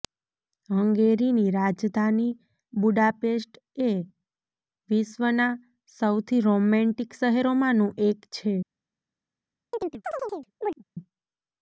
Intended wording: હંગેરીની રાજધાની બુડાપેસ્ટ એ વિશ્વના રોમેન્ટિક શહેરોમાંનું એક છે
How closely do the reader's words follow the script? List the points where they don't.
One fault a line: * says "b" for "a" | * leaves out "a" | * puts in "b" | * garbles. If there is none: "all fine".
* puts in "સૌથી"